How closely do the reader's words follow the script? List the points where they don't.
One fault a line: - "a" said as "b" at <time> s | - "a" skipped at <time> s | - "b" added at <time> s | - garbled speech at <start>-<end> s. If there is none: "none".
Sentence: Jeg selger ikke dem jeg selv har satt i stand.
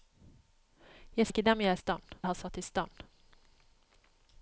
- "selger" skipped at 1.3 s
- "selv" said as "stand" at 1.8 s